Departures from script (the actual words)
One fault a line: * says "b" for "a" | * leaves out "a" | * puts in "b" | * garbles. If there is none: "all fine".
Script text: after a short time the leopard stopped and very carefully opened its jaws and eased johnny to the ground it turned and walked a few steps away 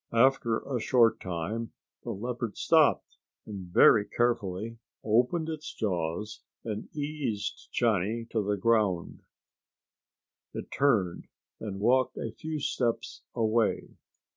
all fine